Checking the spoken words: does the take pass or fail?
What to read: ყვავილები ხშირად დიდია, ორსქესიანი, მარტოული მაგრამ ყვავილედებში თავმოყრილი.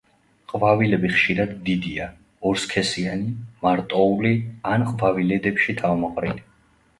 fail